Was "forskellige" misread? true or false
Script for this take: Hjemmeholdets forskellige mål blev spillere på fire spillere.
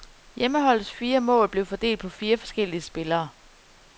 true